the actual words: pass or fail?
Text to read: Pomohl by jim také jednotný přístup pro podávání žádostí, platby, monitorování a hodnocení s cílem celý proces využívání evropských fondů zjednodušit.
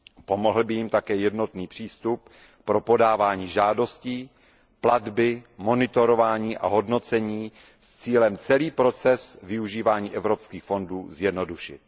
pass